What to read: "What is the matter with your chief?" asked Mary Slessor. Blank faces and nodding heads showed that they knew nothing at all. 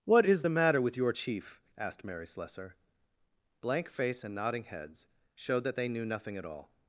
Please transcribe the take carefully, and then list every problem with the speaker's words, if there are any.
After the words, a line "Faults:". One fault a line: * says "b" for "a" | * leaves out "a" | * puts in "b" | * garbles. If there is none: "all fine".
"What is the matter with your chief?" asked Mary Slessor. Blank face and nodding heads showed that they knew nothing at all.
Faults:
* says "face" for "faces"